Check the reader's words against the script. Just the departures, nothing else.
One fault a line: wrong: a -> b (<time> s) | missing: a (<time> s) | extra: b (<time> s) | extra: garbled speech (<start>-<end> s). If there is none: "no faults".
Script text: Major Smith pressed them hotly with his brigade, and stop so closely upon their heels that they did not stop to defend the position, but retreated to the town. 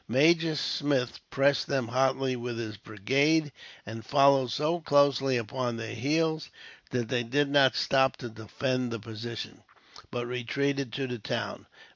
wrong: stop -> followed (4.0 s)